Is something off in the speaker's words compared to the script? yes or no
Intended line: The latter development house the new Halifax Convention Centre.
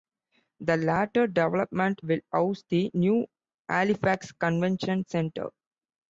yes